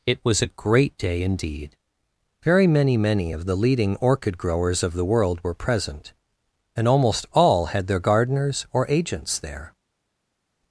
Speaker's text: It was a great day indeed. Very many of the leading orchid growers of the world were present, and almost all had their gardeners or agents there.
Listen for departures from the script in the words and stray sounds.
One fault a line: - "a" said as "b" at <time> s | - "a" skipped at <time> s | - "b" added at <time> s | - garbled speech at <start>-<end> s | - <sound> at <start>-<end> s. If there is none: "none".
- "many" added at 3.0 s